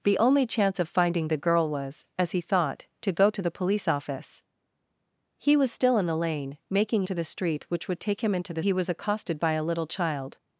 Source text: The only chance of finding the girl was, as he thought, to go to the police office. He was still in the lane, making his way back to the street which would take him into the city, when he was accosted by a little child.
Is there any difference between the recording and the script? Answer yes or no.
yes